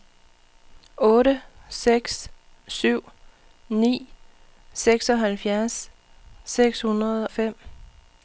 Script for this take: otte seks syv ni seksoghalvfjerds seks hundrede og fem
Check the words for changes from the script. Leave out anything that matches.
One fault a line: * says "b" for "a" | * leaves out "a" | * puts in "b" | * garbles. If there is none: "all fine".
* leaves out "og"